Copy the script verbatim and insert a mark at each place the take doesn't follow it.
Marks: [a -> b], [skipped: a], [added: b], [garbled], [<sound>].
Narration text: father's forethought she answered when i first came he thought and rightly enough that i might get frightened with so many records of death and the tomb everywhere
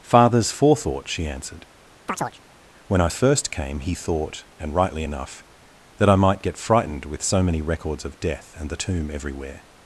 father's forethought she answered [chirp] when i first came he thought and rightly enough that i might get frightened with so many records of death and the tomb everywhere